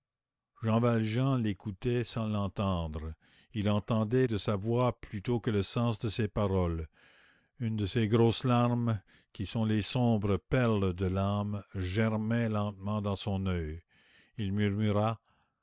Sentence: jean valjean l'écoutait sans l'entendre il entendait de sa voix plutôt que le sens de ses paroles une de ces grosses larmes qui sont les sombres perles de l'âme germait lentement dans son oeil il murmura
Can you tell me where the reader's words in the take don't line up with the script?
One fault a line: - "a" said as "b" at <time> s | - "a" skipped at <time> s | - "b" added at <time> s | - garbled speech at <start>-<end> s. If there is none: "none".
none